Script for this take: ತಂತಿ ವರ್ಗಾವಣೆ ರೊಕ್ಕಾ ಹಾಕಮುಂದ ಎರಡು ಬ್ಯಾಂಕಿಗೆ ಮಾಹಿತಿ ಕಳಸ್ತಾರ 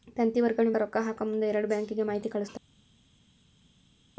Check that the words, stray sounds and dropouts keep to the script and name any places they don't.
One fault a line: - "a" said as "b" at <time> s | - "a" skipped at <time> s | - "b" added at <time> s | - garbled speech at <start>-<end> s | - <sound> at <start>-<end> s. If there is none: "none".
none